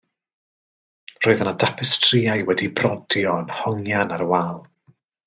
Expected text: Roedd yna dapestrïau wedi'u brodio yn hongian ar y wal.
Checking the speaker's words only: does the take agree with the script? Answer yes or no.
yes